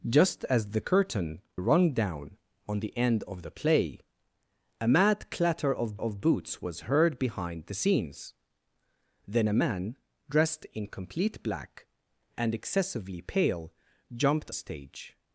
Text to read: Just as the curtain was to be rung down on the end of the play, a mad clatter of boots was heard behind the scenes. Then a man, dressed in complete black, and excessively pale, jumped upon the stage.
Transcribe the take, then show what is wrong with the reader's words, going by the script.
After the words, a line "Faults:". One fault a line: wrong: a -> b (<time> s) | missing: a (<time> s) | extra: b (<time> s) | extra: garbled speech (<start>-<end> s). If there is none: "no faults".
Just as the curtain rung down on the end of the play, a mad clatter of of boots was heard behind the scenes. Then a man, dressed in complete black, and excessively pale, jumped stage.
Faults:
missing: was to be (1.4 s)
extra: of (6.0 s)
missing: upon the (14.5 s)